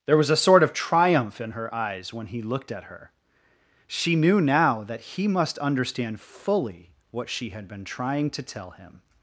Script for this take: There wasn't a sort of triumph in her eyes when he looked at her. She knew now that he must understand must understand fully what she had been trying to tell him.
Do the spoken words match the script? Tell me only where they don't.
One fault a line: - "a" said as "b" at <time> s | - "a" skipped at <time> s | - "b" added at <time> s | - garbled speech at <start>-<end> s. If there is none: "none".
- "wasn't" said as "was" at 0.2 s
- "must understand" skipped at 6.2 s